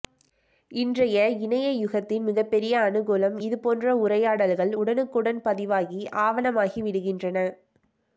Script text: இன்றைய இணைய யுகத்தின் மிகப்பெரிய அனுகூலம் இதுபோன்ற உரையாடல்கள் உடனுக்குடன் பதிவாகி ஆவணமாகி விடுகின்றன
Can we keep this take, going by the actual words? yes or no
yes